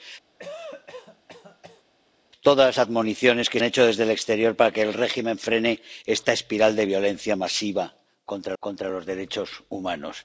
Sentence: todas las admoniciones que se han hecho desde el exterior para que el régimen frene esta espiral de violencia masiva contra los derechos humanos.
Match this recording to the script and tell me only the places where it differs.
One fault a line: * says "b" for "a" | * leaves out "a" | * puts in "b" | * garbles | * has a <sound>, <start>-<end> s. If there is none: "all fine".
* has a cough, 0.4-1.8 s
* leaves out "se"
* puts in "contra"